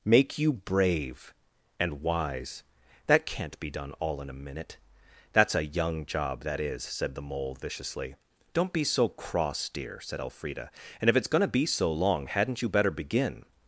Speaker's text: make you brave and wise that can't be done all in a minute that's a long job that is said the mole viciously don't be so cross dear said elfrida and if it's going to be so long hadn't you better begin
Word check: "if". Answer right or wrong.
right